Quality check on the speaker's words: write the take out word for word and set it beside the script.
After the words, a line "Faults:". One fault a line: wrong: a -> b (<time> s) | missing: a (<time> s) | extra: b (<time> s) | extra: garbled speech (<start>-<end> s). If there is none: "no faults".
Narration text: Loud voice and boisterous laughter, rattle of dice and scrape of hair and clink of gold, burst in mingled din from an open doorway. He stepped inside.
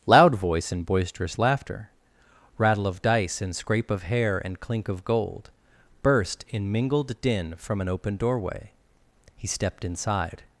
Loud voice and boisterous laughter, rattle of dice and scrape of hair and clink of gold, burst in mingled din from an open doorway. He stepped inside.
Faults:
no faults